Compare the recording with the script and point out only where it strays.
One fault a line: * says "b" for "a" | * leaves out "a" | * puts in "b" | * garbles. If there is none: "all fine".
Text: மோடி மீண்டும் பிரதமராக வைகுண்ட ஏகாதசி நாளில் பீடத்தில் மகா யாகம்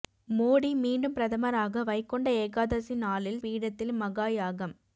all fine